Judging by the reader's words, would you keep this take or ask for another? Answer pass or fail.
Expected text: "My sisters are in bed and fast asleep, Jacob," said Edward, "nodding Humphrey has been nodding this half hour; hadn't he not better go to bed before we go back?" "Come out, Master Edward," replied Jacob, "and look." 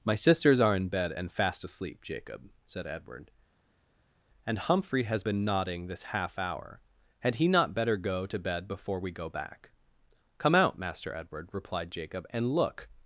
fail